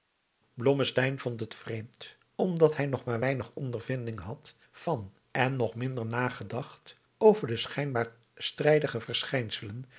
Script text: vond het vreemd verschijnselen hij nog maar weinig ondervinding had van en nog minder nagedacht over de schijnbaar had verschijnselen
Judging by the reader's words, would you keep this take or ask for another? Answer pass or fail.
fail